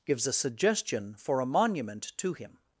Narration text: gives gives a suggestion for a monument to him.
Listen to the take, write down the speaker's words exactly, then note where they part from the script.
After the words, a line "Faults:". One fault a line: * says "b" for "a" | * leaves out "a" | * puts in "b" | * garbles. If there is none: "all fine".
gives a suggestion for a monument to him.
Faults:
* leaves out "gives"